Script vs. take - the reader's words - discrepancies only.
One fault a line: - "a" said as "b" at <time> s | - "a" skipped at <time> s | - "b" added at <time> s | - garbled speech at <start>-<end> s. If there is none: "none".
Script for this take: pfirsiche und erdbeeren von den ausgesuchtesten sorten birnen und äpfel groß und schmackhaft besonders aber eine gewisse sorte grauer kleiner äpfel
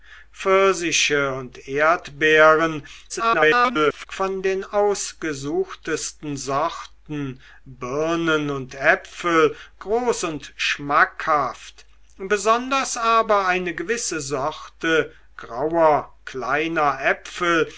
- garbled speech at 3.1-4.1 s